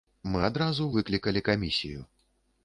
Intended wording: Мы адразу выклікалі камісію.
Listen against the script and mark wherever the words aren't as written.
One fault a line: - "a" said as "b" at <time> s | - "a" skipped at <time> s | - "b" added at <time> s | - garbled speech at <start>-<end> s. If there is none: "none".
none